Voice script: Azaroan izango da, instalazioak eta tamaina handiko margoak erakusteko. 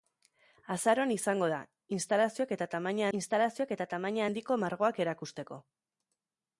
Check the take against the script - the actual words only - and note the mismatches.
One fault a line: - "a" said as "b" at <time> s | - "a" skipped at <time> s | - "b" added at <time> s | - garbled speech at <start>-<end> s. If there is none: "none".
- "instalazioak eta tamaina" added at 3.2 s